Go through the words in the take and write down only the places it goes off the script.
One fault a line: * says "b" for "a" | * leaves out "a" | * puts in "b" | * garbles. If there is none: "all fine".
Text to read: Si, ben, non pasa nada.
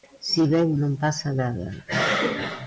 all fine